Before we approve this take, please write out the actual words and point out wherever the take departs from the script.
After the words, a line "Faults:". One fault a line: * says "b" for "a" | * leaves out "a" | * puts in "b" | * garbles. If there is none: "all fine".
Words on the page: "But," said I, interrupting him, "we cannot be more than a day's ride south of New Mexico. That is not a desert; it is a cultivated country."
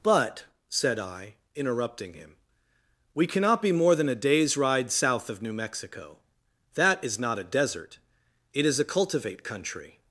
"But," said I, interrupting him, "we cannot be more than a day's ride south of New Mexico. That is not a desert; it is a cultivate country."
Faults:
* says "cultivate" for "cultivated"